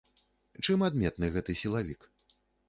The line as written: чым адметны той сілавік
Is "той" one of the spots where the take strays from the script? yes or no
yes